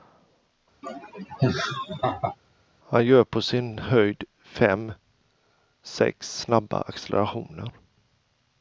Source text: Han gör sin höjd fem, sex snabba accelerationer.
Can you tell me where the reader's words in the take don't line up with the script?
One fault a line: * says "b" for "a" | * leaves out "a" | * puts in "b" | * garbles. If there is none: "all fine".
* puts in "på"